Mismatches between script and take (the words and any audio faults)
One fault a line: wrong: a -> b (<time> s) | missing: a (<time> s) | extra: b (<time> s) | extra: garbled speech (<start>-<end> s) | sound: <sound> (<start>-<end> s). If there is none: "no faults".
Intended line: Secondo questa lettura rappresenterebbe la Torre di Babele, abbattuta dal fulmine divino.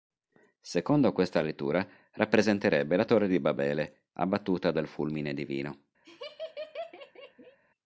sound: laugh (6.0-7.6 s)